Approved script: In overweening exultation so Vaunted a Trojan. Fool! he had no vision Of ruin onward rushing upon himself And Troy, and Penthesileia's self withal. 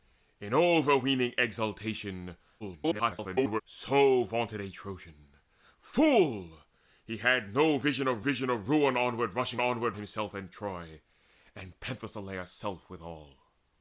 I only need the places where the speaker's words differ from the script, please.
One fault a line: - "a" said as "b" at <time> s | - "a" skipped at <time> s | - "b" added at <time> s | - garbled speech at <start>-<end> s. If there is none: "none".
- garbled speech at 2.6-3.6 s
- "vision Of" added at 8.2 s
- "upon" said as "onward" at 9.6 s